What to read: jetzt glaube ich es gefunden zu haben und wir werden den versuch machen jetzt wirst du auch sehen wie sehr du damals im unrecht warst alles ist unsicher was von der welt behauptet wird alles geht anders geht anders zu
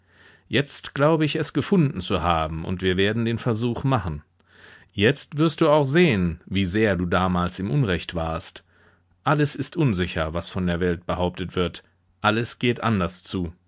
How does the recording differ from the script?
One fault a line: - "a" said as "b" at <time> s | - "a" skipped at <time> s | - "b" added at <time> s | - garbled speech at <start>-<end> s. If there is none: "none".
- "geht anders" skipped at 13.2 s